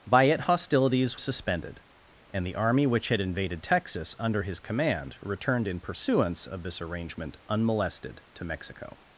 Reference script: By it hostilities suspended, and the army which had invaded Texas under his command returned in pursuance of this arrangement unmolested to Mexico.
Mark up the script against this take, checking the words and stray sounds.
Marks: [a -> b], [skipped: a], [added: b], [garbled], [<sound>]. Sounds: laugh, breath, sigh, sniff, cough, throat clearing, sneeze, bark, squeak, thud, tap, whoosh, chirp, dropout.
By it hostilities suspended, and the army which had invaded Texas under his command returned in pursuance of this arrangement unmolested to Mexico.